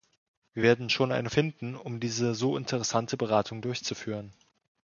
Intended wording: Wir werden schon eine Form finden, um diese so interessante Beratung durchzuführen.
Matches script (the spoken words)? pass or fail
fail